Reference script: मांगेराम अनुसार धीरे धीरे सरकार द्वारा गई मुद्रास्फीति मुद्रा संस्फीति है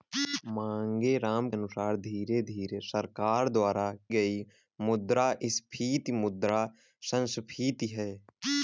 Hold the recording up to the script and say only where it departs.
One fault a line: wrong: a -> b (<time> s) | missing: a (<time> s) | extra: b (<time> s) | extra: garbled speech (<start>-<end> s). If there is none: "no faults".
no faults